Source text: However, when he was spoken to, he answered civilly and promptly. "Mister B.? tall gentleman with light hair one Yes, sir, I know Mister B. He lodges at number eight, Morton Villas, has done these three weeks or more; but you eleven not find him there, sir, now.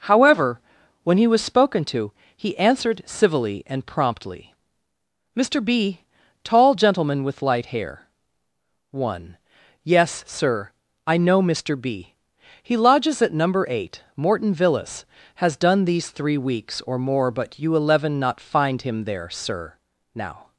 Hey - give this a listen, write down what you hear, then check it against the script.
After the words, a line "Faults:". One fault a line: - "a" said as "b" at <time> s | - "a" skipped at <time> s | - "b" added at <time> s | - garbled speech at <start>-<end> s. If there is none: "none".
However, when he was spoken to, he answered civilly and promptly. "Mister B.? tall gentleman with light hair one Yes, sir, I know Mister B. He lodges at number eight, Morton Villas, has done these three weeks or more; but you eleven not find him there, sir, now.
Faults:
none